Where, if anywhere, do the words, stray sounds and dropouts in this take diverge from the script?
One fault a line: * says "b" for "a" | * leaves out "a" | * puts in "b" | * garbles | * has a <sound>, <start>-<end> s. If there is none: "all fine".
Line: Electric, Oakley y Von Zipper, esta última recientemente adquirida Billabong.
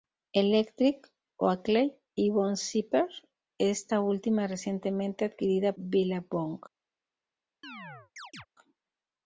* has a chirp, 7.6-8.5 s